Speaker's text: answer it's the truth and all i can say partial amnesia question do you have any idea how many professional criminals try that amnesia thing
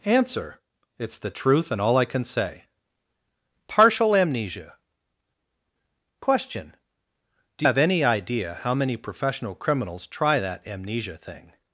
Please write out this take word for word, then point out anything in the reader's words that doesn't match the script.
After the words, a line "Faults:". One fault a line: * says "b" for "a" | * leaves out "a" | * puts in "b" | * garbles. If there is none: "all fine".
answer it's the truth and all i can say partial amnesia question do have any idea how many professional criminals try that amnesia thing
Faults:
* leaves out "you"